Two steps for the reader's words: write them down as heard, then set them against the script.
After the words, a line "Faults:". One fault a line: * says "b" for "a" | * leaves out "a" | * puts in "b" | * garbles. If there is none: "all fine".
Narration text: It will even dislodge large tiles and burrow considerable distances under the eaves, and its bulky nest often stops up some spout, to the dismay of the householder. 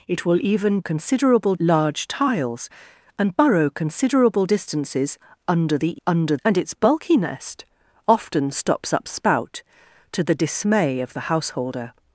It will even considerable large tiles and burrow considerable distances under the under, and its bulky nest often stops up spout, to the dismay of the householder.
Faults:
* says "considerable" for "dislodge"
* says "under" for "eaves"
* leaves out "some"